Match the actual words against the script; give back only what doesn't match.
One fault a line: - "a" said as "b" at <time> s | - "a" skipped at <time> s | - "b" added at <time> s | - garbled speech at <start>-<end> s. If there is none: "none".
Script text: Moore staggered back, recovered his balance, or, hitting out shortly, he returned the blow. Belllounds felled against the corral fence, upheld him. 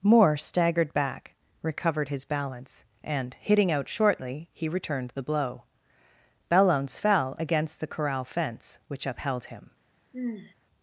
- "or" said as "and" at 3.0 s
- "felled" said as "fell" at 7.0 s
- "which" added at 8.9 s